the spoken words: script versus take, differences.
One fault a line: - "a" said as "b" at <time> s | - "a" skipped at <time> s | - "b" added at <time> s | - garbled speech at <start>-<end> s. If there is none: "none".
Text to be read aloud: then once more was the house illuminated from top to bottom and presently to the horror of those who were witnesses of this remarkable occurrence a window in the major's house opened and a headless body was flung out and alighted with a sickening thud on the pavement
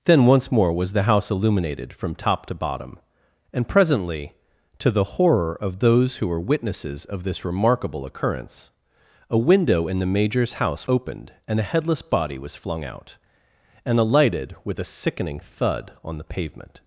none